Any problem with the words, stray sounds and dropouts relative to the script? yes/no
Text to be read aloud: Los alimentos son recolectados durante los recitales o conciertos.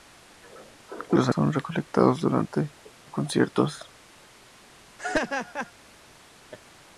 yes